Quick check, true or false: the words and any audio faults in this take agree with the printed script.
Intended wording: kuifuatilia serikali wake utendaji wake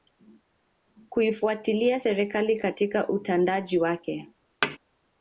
false